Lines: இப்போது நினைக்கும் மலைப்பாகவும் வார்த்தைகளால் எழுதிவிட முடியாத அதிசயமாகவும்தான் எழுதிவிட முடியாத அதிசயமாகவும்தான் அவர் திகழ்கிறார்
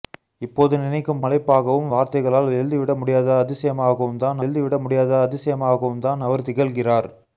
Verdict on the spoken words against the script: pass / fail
pass